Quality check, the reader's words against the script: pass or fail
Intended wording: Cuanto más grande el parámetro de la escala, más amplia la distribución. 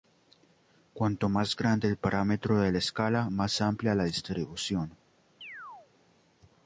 pass